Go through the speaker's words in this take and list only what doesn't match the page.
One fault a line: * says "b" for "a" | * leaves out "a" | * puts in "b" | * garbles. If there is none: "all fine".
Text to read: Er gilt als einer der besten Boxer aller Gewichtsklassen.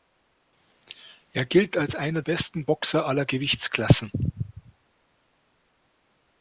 * leaves out "der"